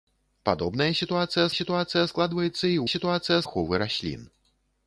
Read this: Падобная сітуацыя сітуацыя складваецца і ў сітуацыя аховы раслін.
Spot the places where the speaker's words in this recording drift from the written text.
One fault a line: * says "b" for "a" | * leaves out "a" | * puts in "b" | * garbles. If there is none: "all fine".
all fine